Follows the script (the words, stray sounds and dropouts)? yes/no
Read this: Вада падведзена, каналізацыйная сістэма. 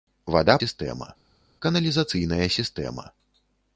no